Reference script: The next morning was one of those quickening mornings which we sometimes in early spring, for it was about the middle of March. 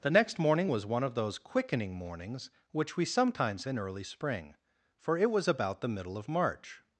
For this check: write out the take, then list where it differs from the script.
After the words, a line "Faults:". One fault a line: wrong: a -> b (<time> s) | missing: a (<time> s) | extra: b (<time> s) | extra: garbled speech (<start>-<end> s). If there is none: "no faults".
The next morning was one of those quickening mornings which we sometimes in early spring, for it was about the middle of March.
Faults:
no faults